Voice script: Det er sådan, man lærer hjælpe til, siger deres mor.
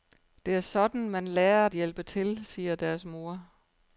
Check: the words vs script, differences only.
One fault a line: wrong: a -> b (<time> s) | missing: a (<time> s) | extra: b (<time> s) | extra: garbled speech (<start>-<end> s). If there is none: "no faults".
no faults